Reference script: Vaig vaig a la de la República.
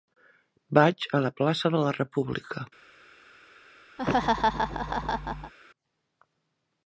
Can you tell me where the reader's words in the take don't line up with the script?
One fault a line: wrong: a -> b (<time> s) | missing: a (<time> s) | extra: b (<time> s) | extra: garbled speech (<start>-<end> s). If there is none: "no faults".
missing: vaig (1.1 s)
extra: plaça (1.4 s)